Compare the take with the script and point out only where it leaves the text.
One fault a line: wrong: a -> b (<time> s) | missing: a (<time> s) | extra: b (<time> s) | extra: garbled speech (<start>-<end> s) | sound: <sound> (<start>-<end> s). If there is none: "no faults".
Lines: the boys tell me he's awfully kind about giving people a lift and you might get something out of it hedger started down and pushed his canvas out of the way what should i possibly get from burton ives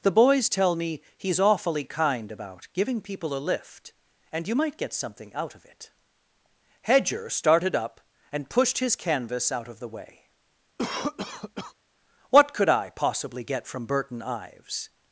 wrong: down -> up (7.7 s)
sound: cough (10.8-11.7 s)
wrong: should -> could (12.5 s)